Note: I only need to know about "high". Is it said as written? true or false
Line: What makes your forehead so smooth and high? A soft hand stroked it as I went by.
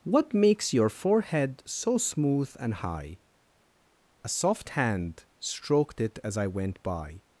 true